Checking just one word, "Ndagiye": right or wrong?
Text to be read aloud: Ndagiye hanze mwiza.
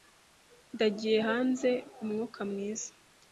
right